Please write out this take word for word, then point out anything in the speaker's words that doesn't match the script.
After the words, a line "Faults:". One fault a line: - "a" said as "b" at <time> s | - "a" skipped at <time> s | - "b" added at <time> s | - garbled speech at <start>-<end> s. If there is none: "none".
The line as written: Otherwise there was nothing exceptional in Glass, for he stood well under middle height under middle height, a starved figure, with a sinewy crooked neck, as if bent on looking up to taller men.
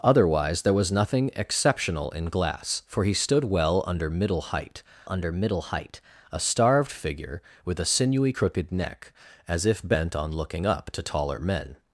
Otherwise there was nothing exceptional in Glass, for he stood well under middle height under middle height, a starved figure, with a sinewy crooked neck, as if bent on looking up to taller men.
Faults:
none